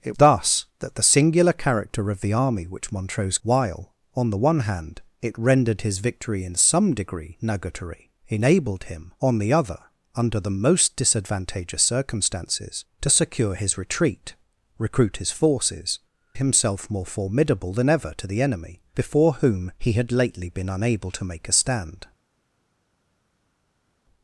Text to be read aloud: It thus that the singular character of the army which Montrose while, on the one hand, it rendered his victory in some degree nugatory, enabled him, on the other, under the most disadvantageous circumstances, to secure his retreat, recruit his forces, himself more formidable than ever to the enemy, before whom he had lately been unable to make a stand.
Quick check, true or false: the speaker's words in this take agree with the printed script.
true